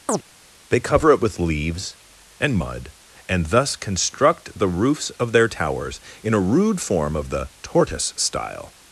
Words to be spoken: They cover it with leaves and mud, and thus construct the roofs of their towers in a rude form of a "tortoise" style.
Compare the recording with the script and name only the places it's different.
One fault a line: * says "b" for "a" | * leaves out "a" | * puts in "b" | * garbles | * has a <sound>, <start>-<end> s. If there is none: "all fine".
* has a chirp, 0.1-0.2 s
* says "the" for "a"